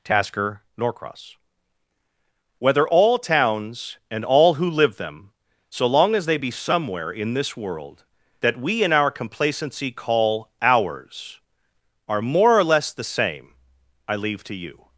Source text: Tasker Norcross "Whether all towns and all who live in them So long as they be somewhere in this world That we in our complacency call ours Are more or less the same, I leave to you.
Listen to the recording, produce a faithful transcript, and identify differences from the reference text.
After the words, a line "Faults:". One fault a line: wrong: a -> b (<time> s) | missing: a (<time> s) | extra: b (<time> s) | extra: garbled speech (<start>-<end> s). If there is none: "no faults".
Tasker Norcross "Whether all towns and all who live them So long as they be somewhere in this world That we in our complacency call ours Are more or less the same, I leave to you.
Faults:
missing: in (5.0 s)